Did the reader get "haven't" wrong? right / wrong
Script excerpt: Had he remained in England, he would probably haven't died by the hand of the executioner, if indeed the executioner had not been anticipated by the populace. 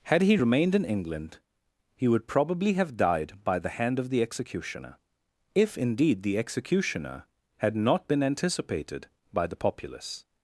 wrong